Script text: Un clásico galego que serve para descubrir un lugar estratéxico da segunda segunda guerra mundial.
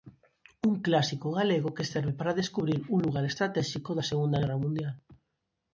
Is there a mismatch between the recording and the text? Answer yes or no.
yes